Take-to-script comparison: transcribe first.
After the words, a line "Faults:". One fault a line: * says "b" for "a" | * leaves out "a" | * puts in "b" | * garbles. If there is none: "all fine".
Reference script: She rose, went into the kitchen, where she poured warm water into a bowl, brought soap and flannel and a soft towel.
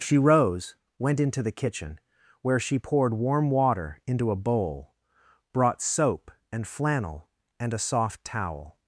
She rose, went into the kitchen, where she poured warm water into a bowl, brought soap and flannel and a soft towel.
Faults:
all fine